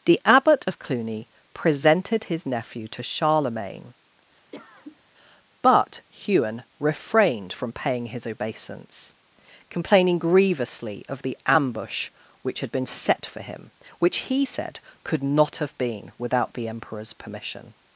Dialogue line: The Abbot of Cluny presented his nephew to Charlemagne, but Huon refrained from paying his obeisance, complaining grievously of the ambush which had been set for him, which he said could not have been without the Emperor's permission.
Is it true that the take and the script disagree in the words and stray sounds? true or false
true